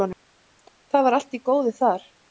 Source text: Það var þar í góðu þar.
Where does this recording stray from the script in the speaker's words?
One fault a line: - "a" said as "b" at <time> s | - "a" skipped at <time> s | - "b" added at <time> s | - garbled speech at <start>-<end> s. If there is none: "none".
- "þar" said as "allt" at 1.2 s